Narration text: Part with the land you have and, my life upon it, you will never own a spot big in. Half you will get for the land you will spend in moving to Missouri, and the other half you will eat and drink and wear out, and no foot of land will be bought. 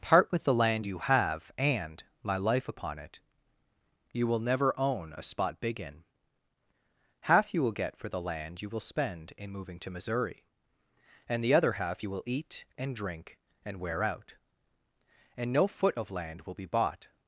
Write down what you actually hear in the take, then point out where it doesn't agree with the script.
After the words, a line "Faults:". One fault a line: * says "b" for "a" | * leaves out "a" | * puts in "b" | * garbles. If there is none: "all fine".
Part with the land you have and, my life upon it, you will never own a spot big in. Half you will get for the land you will spend in moving to Missouri, and the other half you will eat and drink and wear out, and no foot of land will be bought.
Faults:
all fine